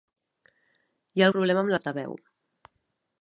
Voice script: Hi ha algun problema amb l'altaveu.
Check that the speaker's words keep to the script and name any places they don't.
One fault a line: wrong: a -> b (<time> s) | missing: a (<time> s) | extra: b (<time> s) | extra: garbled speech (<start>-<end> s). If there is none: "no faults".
missing: algun (1.3 s)